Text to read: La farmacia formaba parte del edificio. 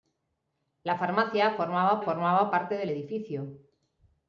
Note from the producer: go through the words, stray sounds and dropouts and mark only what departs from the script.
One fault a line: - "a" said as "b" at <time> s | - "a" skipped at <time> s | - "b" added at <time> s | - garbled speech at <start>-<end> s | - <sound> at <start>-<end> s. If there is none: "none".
- "formaba" added at 2.0 s